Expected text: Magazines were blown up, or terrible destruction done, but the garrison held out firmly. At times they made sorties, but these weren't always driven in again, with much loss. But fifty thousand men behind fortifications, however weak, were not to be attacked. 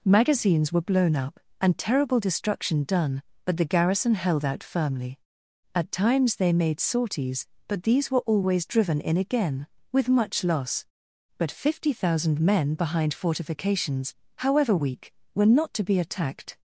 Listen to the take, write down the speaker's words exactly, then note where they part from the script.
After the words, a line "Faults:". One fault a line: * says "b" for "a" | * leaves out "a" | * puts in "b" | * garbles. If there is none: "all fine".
Magazines were blown up, and terrible destruction done, but the garrison held out firmly. At times they made sorties, but these were always driven in again, with much loss. But fifty thousand men behind fortifications, however weak, were not to be attacked.
Faults:
* says "and" for "or"
* says "were" for "weren't"